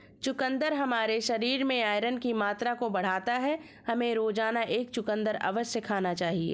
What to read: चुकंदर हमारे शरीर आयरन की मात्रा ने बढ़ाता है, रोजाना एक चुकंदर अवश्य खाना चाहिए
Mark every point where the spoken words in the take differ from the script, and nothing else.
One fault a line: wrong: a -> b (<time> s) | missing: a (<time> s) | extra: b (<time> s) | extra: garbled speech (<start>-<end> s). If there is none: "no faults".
extra: में (1.6 s)
wrong: ने -> को (2.7 s)
extra: हमें (3.9 s)